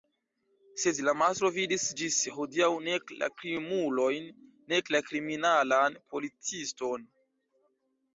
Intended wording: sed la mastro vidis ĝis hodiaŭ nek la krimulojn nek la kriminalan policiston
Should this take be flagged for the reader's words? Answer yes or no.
no